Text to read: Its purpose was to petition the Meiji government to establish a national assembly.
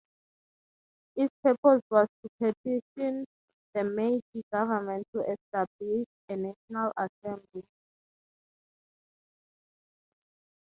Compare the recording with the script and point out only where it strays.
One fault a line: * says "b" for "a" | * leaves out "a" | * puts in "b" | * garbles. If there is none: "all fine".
all fine